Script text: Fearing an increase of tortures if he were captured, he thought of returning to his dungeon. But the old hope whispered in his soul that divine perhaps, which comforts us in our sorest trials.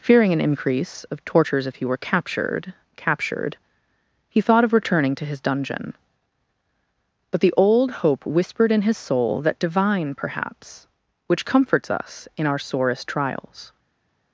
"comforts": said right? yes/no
yes